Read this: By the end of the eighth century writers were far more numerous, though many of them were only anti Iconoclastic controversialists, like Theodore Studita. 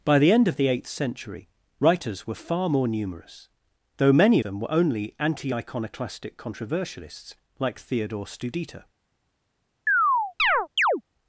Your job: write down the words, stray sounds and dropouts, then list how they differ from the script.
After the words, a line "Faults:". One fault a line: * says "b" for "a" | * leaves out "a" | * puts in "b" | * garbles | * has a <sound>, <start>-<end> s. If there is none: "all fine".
By the end of the eighth century writers were far more numerous, though many them were only anti Iconoclastic controversialists, like Theodore Studita.
Faults:
* leaves out "of"
* has a chirp, 9.9-11.0 s